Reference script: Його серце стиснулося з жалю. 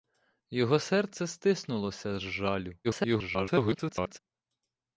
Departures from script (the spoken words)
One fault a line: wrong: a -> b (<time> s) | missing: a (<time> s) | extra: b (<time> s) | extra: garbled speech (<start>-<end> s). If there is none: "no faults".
extra: garbled speech (2.8-4.2 s)